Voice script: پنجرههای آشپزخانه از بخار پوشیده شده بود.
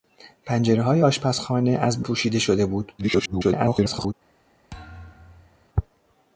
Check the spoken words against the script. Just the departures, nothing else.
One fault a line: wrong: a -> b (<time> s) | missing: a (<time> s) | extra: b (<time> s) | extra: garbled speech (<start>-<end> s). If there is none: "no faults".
missing: بخار (2.0 s)
extra: garbled speech (3.0-4.1 s)